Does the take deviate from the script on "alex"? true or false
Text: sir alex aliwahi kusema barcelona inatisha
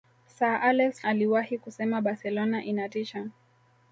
false